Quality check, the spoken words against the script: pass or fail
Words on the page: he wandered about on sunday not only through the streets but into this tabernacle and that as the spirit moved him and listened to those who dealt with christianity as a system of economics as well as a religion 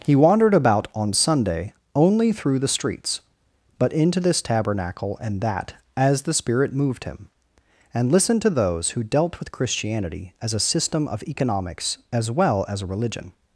fail